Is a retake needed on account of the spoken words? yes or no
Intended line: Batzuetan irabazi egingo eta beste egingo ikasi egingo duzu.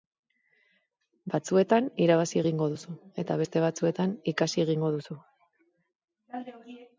yes